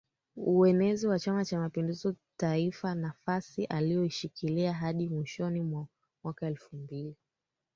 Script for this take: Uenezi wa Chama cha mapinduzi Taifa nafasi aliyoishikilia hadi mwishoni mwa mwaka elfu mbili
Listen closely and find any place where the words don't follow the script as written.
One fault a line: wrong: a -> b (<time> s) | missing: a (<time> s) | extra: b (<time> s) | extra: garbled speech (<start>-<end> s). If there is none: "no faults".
no faults